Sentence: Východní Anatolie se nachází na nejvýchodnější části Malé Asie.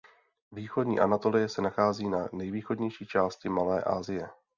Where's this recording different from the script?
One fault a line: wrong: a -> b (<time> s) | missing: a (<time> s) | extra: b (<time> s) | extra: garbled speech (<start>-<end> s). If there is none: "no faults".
no faults